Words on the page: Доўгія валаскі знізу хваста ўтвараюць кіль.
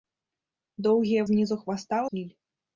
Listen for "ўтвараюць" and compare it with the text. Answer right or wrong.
wrong